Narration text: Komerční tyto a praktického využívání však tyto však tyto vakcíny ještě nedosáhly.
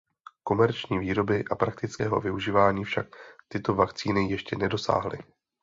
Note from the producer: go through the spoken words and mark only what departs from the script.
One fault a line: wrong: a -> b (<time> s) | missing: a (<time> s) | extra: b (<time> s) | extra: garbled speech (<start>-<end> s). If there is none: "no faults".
wrong: tyto -> výroby (1.0 s)
missing: však tyto (3.7 s)